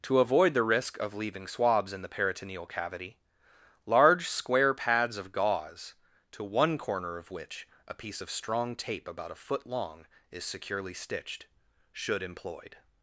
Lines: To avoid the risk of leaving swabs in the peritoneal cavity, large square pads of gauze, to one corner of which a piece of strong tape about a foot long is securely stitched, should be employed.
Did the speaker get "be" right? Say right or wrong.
wrong